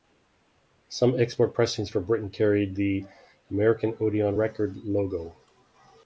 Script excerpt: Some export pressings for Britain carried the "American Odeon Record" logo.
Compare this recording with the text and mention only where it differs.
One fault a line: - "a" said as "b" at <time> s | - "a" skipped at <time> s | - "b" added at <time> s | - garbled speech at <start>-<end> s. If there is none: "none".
none